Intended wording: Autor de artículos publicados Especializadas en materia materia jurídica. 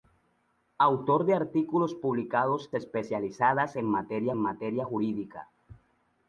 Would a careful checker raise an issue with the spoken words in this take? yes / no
no